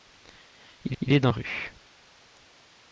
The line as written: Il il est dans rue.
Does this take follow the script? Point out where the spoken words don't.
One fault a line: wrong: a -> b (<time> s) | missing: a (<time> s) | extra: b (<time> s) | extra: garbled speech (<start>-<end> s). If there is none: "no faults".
no faults